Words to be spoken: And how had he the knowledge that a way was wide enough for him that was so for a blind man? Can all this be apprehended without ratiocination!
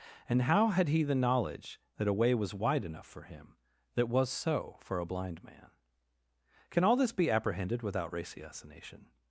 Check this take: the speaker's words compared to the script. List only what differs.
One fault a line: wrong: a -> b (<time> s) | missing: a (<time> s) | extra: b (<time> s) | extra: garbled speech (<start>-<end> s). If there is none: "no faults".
no faults